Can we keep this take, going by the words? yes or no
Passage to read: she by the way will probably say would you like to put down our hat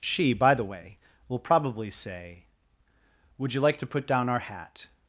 yes